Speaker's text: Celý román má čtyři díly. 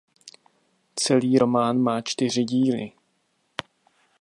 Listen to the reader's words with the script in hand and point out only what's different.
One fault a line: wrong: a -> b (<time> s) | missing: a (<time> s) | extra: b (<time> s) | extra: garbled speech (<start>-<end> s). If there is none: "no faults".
no faults